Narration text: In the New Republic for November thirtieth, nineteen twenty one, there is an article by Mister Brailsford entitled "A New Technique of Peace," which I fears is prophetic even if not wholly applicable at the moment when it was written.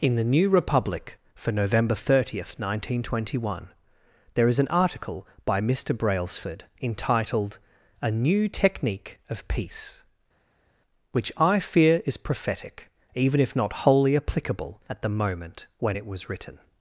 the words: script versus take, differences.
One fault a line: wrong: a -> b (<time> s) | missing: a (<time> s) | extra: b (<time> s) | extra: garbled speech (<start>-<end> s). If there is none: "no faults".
wrong: fears -> fear (11.6 s)